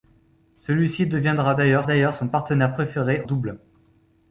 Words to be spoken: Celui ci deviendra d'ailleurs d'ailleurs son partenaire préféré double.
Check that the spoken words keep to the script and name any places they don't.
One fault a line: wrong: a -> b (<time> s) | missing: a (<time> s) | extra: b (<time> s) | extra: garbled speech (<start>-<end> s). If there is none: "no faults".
no faults